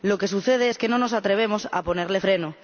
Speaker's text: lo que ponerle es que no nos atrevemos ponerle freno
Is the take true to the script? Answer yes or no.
no